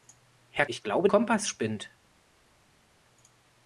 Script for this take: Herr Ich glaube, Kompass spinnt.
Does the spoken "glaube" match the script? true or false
true